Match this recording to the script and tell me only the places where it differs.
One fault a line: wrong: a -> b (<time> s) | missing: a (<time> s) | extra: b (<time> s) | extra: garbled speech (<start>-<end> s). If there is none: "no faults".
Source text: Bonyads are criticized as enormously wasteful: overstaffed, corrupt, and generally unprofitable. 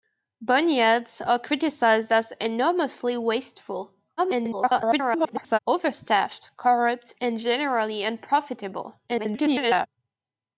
extra: garbled speech (4.2-5.6 s)
extra: garbled speech (9.1-9.9 s)